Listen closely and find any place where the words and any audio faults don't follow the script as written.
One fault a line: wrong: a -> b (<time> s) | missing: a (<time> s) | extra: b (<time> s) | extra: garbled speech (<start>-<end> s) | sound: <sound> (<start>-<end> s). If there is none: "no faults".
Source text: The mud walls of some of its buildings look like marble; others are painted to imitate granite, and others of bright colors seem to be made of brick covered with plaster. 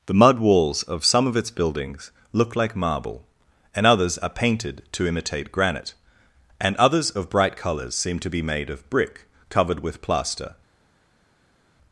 extra: and (3.8 s)